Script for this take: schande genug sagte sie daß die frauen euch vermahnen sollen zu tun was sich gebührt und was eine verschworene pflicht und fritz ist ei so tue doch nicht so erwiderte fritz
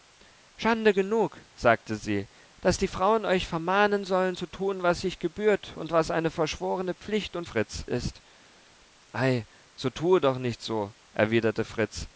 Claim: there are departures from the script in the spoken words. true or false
false